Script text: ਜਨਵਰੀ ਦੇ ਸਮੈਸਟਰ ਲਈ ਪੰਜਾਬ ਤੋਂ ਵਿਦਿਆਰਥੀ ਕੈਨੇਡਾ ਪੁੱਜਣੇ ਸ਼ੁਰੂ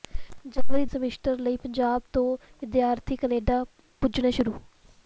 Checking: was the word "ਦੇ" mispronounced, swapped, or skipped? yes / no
yes